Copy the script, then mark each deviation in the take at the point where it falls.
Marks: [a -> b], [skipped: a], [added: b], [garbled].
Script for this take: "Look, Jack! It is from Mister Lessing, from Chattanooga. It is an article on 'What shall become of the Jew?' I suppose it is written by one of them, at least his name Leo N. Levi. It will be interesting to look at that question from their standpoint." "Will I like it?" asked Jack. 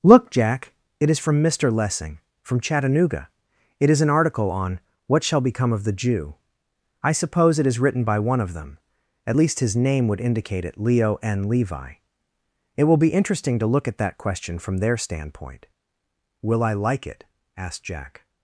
"Look, Jack! It is from Mister Lessing, from Chattanooga. It is an article on 'What shall become of the Jew?' I suppose it is written by one of them, at least his name [added: would indicate it] Leo N. Levi. It will be interesting to look at that question from their standpoint." "Will I like it?" asked Jack.